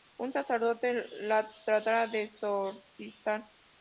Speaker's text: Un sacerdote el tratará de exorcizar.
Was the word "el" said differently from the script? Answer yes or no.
yes